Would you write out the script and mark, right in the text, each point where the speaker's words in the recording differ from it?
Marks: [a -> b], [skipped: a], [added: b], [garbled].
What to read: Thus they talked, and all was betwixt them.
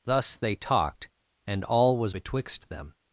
Thus they talked, and all was betwixt them.